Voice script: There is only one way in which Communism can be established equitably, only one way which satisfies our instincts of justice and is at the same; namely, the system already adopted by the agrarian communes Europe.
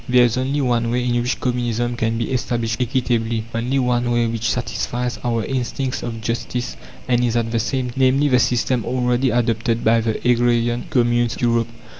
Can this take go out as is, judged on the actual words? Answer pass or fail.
pass